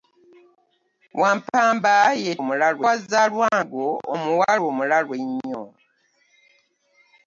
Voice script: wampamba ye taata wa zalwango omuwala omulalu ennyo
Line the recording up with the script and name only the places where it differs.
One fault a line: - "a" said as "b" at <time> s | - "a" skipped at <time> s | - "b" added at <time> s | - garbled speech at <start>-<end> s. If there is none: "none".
- "taata" said as "omulalu" at 2.4 s